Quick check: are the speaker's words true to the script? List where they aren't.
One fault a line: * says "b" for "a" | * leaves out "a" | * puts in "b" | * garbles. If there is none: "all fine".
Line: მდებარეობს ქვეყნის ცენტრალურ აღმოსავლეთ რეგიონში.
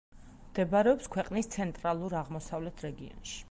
all fine